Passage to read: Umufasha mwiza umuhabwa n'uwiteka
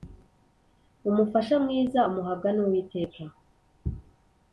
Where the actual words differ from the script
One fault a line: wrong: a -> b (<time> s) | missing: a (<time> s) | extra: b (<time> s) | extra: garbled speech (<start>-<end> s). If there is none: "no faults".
no faults